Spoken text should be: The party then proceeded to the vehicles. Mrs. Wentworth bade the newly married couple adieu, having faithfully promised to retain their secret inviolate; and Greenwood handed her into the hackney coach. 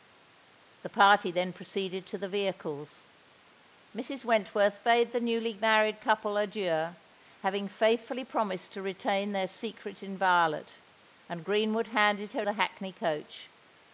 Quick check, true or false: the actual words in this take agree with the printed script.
false